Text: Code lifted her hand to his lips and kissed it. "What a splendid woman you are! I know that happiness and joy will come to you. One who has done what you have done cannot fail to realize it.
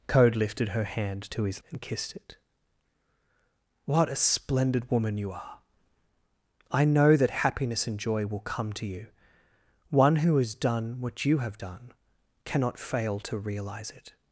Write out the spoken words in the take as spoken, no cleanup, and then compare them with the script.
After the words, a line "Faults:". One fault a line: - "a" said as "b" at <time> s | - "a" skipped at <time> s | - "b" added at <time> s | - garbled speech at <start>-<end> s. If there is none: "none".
Code lifted her hand to his and kissed it. "What a splendid woman you are! I know that happiness and joy will come to you. One who has done what you have done cannot fail to realize it.
Faults:
- "lips" skipped at 1.6 s